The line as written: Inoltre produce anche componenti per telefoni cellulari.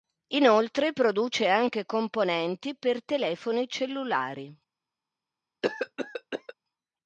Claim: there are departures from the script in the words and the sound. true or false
true